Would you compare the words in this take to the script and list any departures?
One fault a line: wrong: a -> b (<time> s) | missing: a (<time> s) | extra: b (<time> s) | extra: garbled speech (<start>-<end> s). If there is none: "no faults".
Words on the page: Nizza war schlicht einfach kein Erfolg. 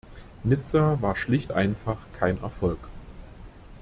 no faults